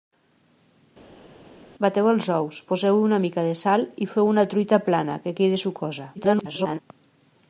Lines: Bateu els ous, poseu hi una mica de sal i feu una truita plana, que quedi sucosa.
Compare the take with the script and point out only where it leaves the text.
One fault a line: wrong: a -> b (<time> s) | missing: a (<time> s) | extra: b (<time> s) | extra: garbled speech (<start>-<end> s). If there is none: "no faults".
extra: garbled speech (6.2-6.8 s)